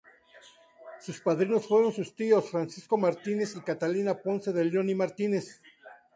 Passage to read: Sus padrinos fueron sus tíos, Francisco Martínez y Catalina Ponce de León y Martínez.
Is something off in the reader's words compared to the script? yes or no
no